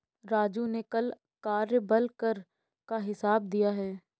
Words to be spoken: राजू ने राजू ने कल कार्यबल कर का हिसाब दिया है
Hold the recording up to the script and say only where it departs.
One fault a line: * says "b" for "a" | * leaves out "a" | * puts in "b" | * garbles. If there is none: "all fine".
* leaves out "राजू ने"